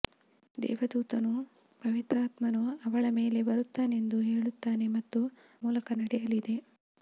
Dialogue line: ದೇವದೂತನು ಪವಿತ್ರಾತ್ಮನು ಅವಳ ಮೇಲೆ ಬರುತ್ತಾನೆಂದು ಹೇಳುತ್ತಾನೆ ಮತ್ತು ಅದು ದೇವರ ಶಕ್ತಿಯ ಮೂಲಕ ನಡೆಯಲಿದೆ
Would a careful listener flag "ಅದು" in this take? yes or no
yes